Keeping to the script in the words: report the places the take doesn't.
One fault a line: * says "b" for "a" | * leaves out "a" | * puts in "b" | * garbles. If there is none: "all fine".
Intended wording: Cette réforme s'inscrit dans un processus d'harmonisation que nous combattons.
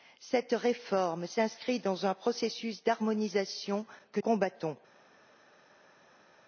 * leaves out "nous"